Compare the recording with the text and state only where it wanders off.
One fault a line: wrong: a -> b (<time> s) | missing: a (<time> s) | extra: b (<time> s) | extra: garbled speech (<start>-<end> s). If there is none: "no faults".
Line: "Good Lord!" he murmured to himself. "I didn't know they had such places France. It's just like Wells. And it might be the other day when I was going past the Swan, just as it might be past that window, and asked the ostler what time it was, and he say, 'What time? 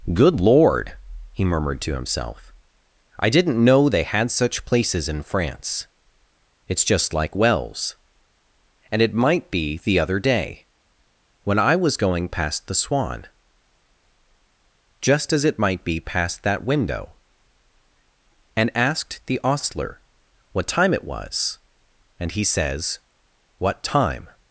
extra: in (5.1 s)
wrong: say -> says (22.4 s)